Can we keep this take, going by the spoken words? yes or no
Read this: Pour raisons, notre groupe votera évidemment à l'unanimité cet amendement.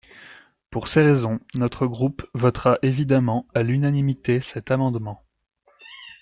no